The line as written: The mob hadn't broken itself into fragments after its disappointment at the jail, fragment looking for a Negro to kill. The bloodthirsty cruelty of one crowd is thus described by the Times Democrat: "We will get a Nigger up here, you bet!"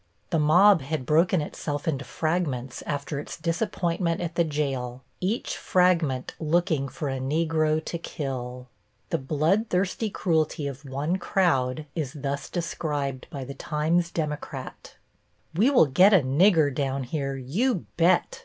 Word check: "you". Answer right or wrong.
right